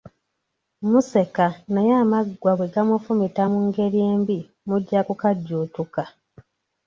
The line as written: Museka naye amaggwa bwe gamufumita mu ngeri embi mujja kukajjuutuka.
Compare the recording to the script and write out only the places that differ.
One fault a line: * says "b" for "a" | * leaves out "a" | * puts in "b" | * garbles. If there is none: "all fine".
all fine